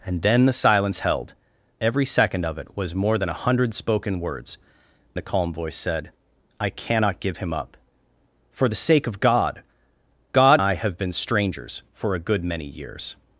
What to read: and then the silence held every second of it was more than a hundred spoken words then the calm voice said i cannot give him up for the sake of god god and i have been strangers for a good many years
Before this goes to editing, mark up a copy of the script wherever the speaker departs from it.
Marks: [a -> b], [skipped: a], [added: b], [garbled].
and then the silence held every second of it was more than a hundred spoken words [skipped: then] the calm voice said i cannot give him up for the sake of god god [skipped: and] i have been strangers for a good many years